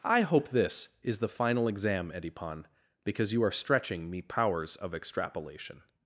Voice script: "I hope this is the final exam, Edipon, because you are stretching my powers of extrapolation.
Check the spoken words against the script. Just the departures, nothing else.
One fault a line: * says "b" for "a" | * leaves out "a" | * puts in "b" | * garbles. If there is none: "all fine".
* says "me" for "my"